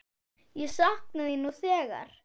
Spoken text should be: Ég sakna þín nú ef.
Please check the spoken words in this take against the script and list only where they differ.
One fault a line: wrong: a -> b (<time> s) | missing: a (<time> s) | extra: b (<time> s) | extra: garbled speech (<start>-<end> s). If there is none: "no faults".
wrong: ef -> þegar (1.6 s)